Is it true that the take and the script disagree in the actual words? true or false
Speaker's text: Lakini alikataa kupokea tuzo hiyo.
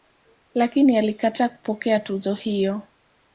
false